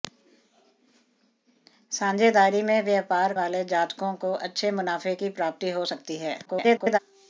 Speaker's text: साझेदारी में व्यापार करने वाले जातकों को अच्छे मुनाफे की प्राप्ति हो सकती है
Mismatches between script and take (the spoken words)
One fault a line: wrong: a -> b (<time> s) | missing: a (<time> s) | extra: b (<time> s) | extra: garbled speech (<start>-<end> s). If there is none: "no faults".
missing: करने (3.3 s)
extra: garbled speech (6.5-7.0 s)